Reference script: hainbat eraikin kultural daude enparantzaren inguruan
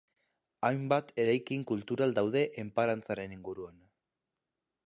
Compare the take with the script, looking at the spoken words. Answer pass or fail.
pass